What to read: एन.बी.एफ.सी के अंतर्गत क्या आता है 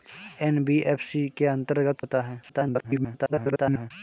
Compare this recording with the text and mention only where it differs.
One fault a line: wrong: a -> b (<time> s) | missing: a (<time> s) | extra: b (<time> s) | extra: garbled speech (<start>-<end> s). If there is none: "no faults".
missing: क्या (2.0 s)
extra: garbled speech (2.5-3.9 s)